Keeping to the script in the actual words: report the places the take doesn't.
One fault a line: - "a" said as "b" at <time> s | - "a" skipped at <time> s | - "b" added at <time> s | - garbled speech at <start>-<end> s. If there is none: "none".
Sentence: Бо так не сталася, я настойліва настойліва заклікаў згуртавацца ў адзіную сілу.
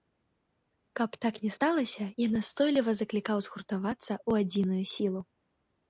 - "Бо" said as "Каб" at 1.0 s
- "настойліва" skipped at 2.9 s